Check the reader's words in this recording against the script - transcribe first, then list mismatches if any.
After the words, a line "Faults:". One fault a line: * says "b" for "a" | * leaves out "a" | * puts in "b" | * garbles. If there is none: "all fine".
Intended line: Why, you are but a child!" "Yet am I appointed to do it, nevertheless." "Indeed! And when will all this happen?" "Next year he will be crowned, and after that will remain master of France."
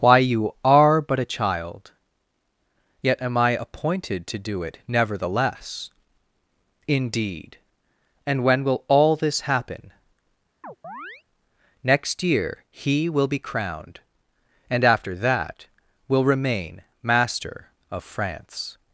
Why, you are but a child!" "Yet am I appointed to do it, nevertheless." "Indeed! And when will all this happen?" "Next year he will be crowned, and after that will remain master of France."
Faults:
all fine